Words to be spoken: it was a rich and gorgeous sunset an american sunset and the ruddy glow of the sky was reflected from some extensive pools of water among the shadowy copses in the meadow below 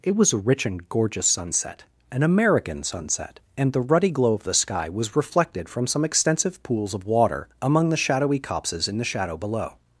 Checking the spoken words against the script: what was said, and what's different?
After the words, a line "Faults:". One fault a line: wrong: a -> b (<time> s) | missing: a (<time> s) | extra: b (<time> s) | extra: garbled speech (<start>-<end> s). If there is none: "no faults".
it was a rich and gorgeous sunset an american sunset and the ruddy glow of the sky was reflected from some extensive pools of water among the shadowy copses in the shadow below
Faults:
wrong: meadow -> shadow (9.1 s)